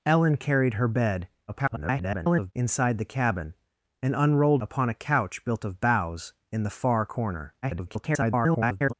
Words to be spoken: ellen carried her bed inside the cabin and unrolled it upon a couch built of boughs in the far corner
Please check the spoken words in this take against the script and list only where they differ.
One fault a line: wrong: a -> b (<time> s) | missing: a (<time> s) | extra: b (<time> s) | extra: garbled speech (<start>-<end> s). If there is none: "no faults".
extra: garbled speech (1.5-2.5 s)
missing: it (4.6 s)
extra: garbled speech (7.6-8.9 s)